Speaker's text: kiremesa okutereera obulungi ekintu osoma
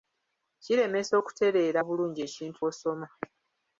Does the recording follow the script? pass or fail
pass